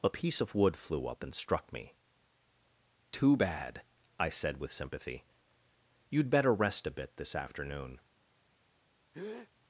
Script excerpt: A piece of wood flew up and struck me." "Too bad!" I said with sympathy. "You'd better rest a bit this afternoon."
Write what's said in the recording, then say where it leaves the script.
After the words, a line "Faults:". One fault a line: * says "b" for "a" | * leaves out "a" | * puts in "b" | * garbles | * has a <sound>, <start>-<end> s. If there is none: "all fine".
A piece of wood flew up and struck me." "Too bad!" I said with sympathy. "You'd better rest a bit this afternoon."
Faults:
* has a breath, 9.1-9.5 s